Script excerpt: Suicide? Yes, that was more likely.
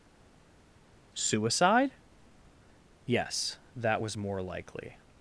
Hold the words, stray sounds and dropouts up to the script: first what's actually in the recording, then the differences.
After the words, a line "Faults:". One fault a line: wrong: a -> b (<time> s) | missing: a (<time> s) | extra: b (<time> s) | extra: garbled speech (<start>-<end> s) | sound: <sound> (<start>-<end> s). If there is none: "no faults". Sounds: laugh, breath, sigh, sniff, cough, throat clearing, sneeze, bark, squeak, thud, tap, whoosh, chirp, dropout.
Suicide? Yes, that was more likely.
Faults:
no faults